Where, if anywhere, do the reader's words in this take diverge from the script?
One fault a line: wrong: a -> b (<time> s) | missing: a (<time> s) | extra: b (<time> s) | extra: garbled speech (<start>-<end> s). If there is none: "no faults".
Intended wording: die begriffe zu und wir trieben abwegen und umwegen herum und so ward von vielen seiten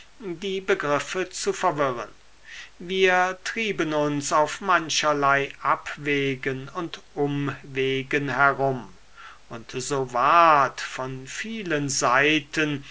wrong: und -> verwirren (1.5 s)
extra: uns auf mancherlei (3.9 s)